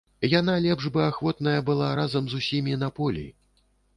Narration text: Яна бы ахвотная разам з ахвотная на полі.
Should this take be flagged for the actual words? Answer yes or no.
yes